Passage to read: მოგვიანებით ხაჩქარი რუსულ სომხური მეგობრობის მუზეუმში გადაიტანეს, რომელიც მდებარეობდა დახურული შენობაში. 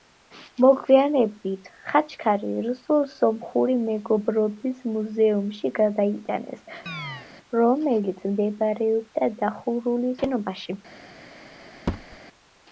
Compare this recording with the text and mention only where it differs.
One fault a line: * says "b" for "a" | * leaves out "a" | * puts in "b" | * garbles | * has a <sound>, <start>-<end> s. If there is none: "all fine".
* has a chirp, 6.9-7.3 s
* has a thud, 11.9-12.2 s